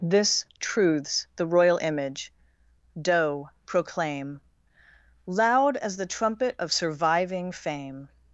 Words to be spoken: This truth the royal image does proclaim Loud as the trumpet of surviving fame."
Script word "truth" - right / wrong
wrong